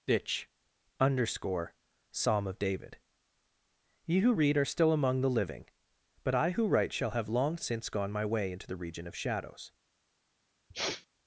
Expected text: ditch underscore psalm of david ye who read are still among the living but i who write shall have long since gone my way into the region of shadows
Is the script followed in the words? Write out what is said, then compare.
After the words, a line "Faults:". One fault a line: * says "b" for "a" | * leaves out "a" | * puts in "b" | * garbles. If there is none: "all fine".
ditch underscore psalm of david ye who read are still among the living but i who write shall have long since gone my way into the region of shadows
Faults:
all fine